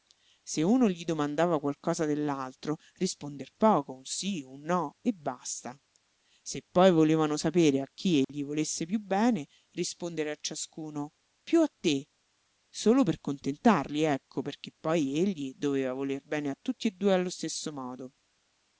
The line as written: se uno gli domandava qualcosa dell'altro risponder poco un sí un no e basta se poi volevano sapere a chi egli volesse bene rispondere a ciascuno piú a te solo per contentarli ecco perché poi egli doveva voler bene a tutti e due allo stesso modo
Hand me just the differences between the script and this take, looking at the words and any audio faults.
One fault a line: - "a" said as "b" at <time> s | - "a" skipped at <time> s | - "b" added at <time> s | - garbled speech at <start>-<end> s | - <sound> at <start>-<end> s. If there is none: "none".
- dropout at 8.2-8.3 s
- "piú" added at 8.9 s